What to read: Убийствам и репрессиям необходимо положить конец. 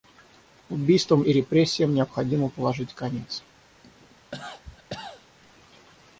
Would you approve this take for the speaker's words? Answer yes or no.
yes